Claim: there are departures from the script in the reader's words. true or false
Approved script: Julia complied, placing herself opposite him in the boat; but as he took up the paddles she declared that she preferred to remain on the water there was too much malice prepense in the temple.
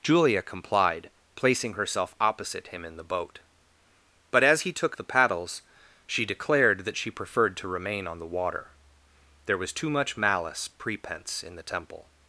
true